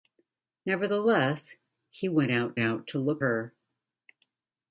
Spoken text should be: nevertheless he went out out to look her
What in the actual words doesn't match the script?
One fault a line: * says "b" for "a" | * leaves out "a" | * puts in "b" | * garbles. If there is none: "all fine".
all fine